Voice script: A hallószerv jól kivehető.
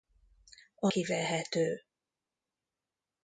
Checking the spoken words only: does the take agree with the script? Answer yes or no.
no